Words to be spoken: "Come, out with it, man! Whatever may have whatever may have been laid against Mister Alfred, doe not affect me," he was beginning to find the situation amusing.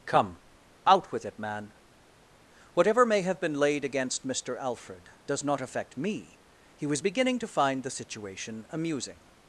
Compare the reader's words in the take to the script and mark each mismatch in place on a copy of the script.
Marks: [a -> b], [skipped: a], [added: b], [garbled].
"Come, out with it, man! Whatever may have [skipped: whatever may have] been laid against Mister Alfred, [doe -> does] not affect me," he was beginning to find the situation amusing.